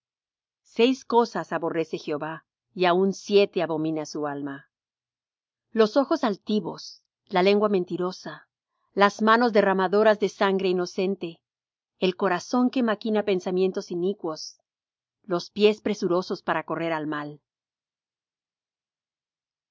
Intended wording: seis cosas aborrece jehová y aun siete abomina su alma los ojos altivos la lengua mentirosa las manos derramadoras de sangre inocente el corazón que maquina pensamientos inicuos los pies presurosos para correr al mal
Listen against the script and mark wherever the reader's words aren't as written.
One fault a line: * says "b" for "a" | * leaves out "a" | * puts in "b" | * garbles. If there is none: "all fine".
all fine